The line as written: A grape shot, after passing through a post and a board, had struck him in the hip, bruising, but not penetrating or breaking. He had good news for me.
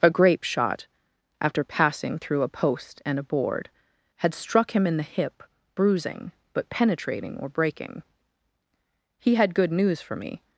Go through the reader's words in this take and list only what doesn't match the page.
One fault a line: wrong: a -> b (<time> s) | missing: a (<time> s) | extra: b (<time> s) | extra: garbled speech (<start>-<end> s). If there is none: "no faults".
missing: not (6.7 s)